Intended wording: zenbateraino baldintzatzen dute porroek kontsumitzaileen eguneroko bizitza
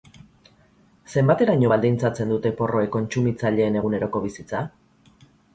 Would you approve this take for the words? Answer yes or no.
yes